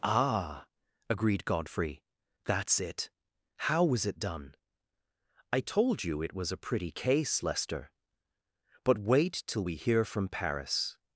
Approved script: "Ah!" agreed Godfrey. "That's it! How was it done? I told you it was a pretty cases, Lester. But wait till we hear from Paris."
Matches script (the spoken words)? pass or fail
fail